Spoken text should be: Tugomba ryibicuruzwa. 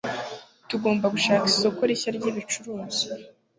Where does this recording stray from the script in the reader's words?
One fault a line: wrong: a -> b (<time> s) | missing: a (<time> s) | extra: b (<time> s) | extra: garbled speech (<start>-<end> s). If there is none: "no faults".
extra: gushaka isoko rishya (1.1 s)